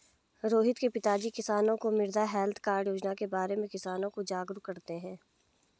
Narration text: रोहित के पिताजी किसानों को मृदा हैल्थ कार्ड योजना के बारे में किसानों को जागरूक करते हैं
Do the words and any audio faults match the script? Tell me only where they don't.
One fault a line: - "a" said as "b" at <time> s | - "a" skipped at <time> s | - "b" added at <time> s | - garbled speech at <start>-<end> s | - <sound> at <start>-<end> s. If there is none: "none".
none